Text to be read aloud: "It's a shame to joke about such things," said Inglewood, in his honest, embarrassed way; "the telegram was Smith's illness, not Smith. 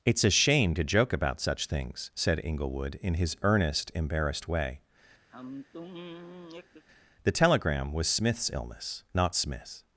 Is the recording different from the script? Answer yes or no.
yes